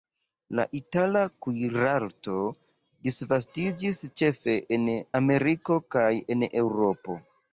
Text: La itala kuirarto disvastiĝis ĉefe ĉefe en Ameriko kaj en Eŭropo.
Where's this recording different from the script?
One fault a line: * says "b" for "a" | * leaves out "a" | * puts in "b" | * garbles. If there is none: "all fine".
* leaves out "ĉefe"